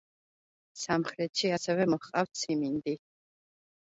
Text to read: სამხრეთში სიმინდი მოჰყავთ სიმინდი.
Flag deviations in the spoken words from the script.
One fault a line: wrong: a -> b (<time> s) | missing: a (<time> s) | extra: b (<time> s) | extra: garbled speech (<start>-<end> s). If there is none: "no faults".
wrong: სიმინდი -> ასევე (1.5 s)